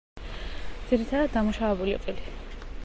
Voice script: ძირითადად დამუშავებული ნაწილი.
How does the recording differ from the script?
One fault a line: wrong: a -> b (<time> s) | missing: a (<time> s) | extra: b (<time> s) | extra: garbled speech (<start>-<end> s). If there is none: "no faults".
no faults